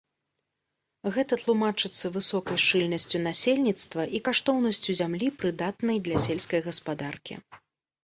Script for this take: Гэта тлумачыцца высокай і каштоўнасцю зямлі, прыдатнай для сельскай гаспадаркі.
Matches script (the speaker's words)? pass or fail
fail